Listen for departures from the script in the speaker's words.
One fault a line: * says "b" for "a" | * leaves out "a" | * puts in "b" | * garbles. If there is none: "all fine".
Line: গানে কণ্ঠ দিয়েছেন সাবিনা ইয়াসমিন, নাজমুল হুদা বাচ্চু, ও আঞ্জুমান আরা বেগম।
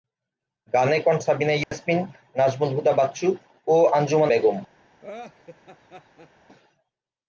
* leaves out "দিয়েছেন"
* leaves out "আরা"